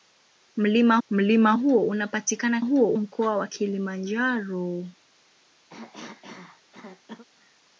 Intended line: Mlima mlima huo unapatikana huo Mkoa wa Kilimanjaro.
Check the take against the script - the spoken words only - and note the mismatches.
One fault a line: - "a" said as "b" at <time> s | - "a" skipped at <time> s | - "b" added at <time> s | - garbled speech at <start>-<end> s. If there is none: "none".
none